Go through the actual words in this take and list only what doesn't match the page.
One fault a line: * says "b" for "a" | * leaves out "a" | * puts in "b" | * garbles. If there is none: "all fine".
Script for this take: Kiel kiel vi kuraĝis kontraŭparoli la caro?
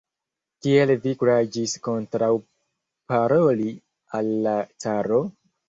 * leaves out "kiel"
* puts in "al"